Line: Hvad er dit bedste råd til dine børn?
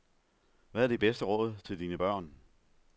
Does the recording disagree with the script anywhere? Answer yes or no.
no